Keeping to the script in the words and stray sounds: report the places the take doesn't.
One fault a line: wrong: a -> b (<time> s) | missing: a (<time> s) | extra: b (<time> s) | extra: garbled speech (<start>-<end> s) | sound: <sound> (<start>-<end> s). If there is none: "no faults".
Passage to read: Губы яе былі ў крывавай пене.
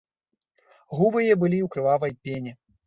no faults